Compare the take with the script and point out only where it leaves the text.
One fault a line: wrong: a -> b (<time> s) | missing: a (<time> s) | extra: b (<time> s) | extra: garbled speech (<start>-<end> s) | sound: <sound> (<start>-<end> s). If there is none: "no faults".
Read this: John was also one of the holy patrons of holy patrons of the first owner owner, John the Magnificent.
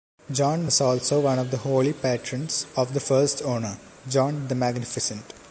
missing: holy patrons of (2.9 s)
missing: owner (3.8 s)